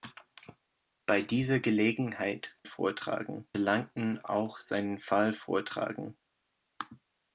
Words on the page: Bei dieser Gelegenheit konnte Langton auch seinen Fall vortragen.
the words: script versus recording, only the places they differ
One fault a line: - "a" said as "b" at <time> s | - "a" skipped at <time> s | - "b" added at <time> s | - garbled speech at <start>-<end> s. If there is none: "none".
- "konnte" said as "vortragen" at 2.6 s